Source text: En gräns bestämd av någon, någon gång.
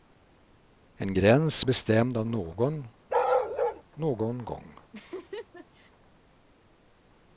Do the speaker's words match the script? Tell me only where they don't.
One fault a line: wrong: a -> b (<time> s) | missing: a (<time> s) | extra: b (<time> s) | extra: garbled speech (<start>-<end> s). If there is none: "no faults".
no faults